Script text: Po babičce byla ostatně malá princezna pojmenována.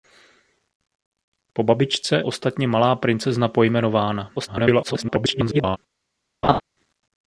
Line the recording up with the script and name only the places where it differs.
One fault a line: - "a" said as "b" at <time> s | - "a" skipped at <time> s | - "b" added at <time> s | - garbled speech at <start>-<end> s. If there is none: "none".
- "byla" skipped at 2.2 s
- garbled speech at 4.3-5.8 s